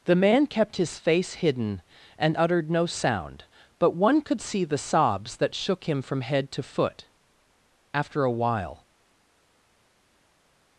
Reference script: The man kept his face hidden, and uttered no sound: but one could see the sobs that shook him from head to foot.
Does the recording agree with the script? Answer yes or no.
no